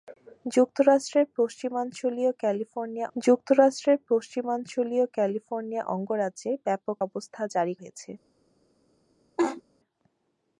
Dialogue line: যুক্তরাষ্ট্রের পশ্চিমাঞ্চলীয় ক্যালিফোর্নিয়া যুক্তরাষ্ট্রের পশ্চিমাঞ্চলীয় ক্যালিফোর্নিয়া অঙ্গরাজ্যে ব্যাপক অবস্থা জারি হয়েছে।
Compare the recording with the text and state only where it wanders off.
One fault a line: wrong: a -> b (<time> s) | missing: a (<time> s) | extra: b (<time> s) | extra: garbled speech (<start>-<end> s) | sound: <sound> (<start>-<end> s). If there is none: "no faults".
sound: laugh (9.4-9.6 s)